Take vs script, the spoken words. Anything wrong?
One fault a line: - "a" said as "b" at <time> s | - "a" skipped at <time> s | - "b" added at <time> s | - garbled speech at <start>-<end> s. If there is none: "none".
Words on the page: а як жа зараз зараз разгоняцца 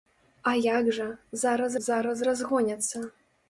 none